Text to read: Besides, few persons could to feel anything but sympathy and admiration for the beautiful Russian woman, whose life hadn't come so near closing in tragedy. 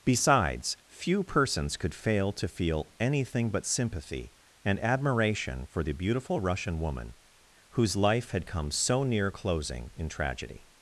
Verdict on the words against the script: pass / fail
fail